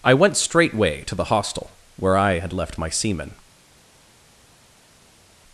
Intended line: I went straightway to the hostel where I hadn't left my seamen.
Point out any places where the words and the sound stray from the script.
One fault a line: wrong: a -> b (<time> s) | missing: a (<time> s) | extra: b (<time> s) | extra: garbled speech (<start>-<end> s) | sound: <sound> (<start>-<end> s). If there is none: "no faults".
wrong: hadn't -> had (2.4 s)